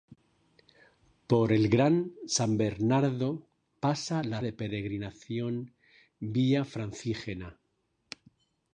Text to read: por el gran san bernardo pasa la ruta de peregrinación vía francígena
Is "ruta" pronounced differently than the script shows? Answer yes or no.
yes